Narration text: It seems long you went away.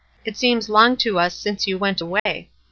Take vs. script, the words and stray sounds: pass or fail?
fail